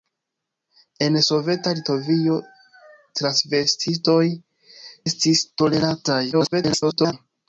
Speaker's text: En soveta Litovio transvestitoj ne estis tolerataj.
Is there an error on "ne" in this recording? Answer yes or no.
yes